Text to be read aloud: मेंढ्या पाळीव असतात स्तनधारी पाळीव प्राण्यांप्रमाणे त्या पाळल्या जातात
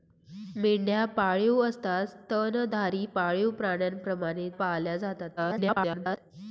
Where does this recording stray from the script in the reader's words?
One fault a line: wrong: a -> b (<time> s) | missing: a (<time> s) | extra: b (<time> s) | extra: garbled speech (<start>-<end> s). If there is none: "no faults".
missing: त्या (4.5 s)
extra: garbled speech (5.4-6.2 s)